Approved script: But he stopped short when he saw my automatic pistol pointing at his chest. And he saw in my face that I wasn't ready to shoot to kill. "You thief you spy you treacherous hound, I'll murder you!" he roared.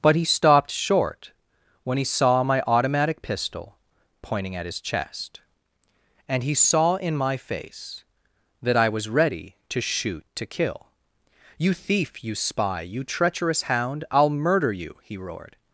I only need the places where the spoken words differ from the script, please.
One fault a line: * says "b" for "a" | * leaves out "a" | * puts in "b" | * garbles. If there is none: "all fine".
* says "was" for "wasn't"